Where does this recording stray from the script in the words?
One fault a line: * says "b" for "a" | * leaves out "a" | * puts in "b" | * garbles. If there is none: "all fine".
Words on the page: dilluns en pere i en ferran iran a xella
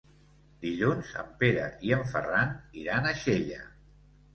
all fine